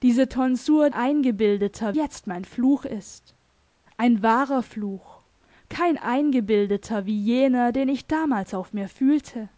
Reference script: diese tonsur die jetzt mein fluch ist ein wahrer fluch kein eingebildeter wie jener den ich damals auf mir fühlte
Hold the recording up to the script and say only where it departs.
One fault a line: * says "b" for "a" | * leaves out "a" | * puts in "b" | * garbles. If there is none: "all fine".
* says "eingebildeter" for "die"